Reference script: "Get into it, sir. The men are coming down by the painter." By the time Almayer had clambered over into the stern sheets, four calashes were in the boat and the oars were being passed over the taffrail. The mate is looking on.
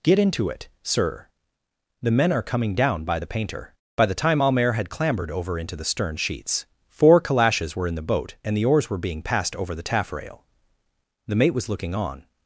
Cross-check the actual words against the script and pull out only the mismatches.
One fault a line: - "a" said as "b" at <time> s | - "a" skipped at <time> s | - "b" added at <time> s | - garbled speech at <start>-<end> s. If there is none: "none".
- "is" said as "was" at 11.5 s